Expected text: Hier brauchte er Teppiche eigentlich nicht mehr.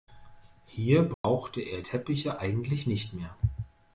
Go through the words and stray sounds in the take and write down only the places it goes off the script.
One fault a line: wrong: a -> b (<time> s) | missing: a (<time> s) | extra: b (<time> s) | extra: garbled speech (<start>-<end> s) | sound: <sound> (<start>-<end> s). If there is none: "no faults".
sound: dropout (1.1-1.2 s)